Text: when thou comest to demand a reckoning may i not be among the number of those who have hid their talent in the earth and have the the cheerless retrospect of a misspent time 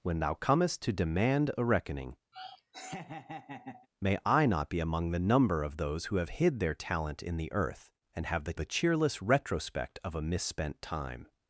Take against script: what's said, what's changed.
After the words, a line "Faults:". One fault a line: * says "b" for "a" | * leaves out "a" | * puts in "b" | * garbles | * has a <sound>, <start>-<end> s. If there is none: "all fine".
when thou comest to demand a reckoning may i not be among the number of those who have hid their talent in the earth and have the the cheerless retrospect of a misspent time
Faults:
* has a laugh, 2.3-3.9 s